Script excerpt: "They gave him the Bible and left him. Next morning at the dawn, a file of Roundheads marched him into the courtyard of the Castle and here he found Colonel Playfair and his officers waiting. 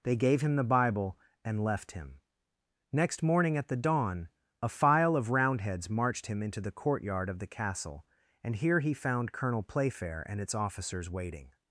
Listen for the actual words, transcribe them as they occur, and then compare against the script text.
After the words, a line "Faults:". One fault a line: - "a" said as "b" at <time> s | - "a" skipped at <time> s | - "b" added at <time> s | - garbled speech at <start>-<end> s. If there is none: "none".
"They gave him the Bible and left him. Next morning at the dawn, a file of Roundheads marched him into the courtyard of the Castle and here he found Colonel Playfair and its officers waiting.
Faults:
- "his" said as "its" at 10.4 s